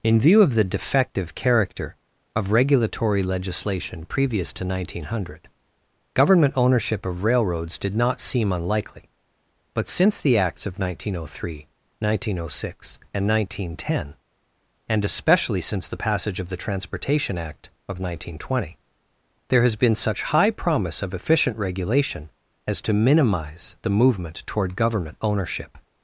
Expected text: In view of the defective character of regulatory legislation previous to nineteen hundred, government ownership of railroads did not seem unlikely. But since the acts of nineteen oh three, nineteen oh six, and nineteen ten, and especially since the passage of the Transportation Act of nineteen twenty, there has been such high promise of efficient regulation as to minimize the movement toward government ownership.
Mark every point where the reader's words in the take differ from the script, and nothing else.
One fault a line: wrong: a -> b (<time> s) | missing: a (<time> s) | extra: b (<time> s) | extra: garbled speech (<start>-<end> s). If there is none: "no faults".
no faults